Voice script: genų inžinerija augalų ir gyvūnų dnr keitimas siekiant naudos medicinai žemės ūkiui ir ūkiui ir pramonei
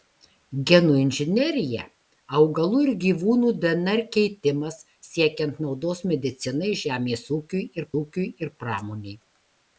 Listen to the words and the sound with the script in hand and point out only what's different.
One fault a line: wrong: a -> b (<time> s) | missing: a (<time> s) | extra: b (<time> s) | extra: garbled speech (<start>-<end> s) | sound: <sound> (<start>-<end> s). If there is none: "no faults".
no faults